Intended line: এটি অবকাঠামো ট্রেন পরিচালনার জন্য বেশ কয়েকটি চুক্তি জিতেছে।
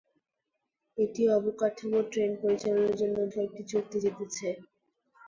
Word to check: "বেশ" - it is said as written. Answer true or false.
false